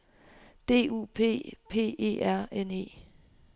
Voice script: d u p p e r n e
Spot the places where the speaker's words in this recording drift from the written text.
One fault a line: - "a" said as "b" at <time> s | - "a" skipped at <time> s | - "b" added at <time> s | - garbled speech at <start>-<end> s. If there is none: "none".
none